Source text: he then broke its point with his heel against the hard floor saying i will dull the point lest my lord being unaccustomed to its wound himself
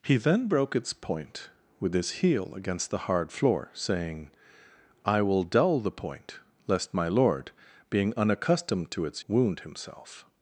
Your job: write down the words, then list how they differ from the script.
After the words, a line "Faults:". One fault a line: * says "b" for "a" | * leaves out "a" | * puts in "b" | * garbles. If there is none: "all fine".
he then broke its point with his heel against the hard floor saying i will dull the point lest my lord being unaccustomed to its wound himself
Faults:
all fine